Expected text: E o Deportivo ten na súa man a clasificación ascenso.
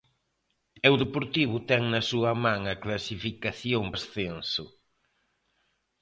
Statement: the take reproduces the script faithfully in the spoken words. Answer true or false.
true